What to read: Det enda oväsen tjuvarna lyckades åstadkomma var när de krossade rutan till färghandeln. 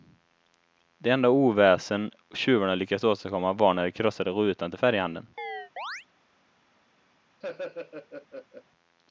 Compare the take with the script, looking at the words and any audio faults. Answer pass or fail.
fail